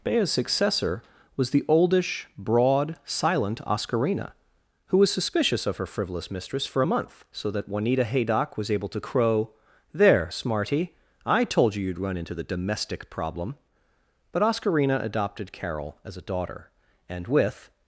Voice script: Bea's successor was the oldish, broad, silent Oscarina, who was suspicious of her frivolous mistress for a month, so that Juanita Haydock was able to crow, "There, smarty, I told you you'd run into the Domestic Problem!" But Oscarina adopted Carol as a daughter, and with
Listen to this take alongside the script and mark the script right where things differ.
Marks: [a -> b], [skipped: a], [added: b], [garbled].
Bea's successor was the oldish, broad, silent Oscarina, who was suspicious of her frivolous mistress for a month, so that Juanita Haydock was able to crow, "There, smarty, I told you you'd run into the Domestic Problem!" But Oscarina adopted Carol as a daughter, and with